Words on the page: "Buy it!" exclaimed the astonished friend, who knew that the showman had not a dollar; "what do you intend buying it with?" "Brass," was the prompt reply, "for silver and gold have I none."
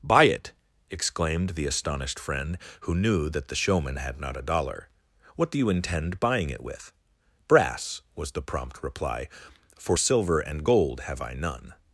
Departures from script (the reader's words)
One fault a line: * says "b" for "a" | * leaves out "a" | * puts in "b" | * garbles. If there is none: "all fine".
all fine